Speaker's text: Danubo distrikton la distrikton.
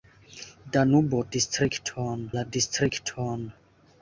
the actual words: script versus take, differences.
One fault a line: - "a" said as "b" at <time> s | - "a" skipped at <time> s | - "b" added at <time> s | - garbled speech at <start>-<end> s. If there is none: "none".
none